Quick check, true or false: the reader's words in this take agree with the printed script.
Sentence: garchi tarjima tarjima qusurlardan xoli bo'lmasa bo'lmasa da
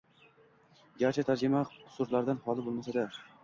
false